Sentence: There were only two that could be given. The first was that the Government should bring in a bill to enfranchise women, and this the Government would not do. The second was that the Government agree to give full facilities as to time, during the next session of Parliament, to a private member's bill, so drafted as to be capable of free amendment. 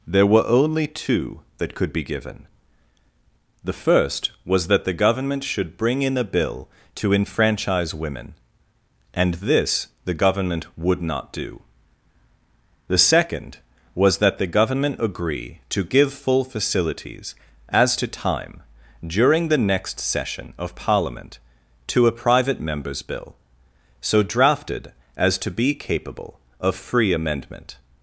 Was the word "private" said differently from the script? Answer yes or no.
no